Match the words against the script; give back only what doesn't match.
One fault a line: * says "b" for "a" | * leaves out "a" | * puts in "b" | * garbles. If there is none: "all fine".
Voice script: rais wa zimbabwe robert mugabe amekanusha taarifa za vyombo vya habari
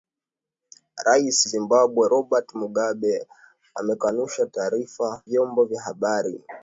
* leaves out "wa"
* leaves out "za"